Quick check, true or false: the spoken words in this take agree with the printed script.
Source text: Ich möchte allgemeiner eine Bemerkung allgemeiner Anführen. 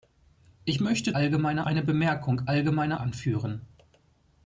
true